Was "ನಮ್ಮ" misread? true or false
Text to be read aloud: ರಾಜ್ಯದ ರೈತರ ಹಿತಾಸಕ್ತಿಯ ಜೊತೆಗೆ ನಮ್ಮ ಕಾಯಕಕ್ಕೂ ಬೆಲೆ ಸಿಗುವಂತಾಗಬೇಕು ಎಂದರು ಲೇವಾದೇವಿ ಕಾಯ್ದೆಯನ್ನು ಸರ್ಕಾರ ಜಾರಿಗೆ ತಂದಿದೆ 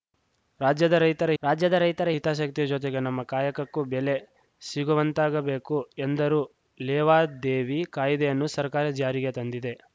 false